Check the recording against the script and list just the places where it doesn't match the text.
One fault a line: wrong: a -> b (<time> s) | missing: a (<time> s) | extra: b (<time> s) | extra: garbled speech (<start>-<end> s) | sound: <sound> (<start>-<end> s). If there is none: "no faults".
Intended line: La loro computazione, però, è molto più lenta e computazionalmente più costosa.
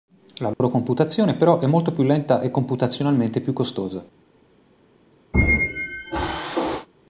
sound: dropout (0.5-0.6 s)
sound: squeak (5.3-6.9 s)